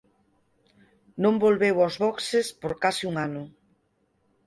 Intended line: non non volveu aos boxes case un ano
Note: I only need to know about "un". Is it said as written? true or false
true